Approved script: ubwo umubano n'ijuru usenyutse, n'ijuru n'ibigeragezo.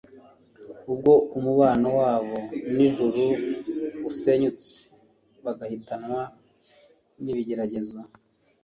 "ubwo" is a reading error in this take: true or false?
false